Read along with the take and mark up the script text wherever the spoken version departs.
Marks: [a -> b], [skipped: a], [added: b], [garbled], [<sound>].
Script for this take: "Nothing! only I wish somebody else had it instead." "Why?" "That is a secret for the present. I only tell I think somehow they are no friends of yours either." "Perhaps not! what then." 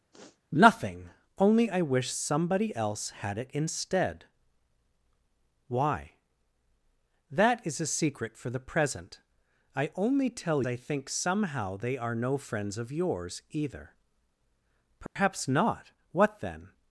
[sniff] "Nothing! only I wish somebody else had it instead." "Why?" "That is a secret for the present. I only tell I think somehow they are no friends of yours either." "Perhaps [dropout] not! what then."